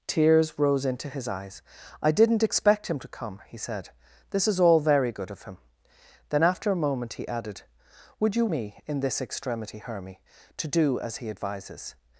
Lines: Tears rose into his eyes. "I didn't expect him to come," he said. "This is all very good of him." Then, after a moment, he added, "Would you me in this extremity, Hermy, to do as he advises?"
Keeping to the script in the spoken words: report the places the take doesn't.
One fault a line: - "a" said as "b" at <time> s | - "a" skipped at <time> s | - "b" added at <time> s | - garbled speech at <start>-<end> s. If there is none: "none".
none